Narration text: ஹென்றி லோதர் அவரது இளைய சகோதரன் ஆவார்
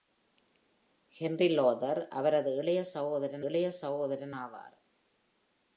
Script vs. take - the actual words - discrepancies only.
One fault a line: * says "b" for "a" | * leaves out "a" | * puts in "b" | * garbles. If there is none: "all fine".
* puts in "இளைய சகோதரன்"